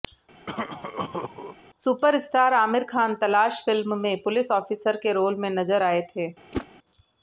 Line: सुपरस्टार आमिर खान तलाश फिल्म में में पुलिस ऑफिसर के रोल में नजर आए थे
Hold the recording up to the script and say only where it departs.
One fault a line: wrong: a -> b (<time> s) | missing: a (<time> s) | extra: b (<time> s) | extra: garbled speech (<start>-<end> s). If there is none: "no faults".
missing: में (4.2 s)